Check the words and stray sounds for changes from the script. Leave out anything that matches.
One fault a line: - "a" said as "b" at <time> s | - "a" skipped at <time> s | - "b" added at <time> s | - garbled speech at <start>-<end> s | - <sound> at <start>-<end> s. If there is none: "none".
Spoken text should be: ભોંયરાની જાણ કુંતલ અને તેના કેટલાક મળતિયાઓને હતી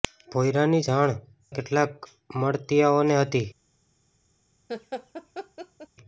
- "કુંતલ અને તેના" skipped at 1.1 s
- laugh at 4.7-5.9 s